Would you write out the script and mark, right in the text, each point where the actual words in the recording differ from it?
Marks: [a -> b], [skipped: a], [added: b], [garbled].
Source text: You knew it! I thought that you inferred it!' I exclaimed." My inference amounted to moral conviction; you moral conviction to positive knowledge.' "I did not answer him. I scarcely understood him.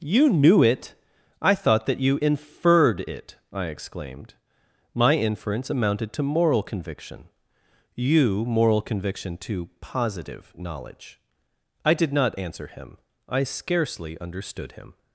You knew it! I thought that you inferred it!' I exclaimed." My inference amounted to moral conviction; you moral conviction to positive knowledge.' "I did not answer him. I scarcely understood him.